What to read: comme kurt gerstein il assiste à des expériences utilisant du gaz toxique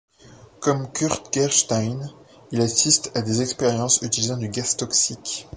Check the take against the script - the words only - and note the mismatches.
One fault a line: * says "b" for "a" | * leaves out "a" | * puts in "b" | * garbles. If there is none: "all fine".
all fine